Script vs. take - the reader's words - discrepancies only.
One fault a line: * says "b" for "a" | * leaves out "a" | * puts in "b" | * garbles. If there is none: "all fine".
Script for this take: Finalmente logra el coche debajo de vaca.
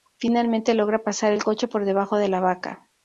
* puts in "pasar"
* puts in "por"
* puts in "la"